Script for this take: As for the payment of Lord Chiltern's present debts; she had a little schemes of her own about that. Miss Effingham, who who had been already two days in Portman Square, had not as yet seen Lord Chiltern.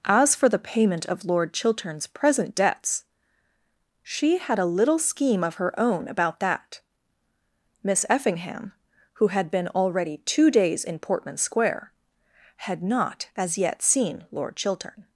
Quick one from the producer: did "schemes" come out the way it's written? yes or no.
no